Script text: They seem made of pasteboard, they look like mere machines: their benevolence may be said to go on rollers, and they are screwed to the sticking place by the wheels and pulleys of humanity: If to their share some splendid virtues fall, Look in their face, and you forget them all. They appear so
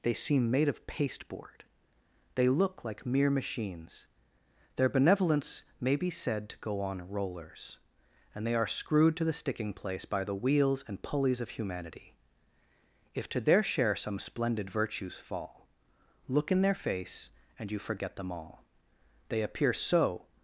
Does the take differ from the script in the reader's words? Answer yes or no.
no